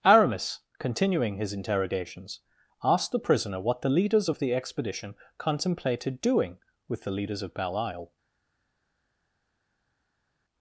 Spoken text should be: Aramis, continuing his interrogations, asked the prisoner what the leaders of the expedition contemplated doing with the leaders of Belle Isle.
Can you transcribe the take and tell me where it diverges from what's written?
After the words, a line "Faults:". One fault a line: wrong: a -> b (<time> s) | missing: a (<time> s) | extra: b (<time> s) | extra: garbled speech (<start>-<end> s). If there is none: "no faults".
Aramis, continuing his interrogations, asked the prisoner what the leaders of the expedition contemplated doing with the leaders of Belle Isle.
Faults:
no faults